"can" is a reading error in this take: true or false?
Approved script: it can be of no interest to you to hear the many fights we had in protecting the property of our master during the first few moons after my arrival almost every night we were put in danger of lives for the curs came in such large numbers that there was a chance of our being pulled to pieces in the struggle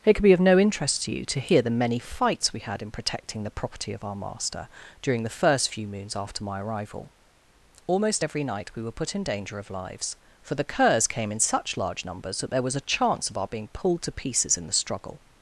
true